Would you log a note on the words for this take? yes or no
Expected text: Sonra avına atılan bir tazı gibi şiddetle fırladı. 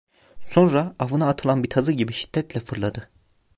no